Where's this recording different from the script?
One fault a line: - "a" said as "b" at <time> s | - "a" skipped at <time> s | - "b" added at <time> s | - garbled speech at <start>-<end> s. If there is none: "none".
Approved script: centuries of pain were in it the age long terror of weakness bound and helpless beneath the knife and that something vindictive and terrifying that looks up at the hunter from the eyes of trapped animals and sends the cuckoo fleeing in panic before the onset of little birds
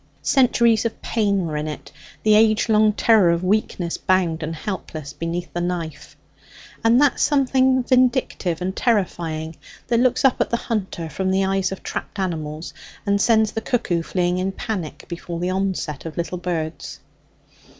none